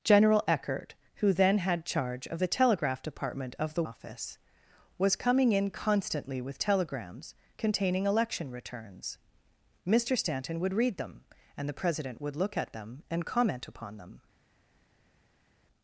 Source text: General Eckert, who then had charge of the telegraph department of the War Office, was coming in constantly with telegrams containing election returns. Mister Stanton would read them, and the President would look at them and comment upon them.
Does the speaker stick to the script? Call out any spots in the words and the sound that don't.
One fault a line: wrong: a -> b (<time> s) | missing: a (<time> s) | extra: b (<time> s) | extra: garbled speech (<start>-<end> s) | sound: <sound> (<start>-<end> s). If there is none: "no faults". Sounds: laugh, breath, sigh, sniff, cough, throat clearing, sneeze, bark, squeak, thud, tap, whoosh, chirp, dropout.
missing: War (3.8 s)